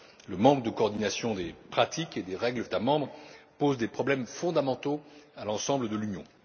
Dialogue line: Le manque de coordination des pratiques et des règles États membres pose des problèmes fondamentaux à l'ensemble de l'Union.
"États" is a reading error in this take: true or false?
false